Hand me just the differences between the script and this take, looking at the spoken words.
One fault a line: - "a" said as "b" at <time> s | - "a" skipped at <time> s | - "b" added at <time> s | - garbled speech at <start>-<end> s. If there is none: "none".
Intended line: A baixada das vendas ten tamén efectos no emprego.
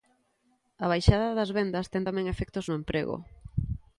none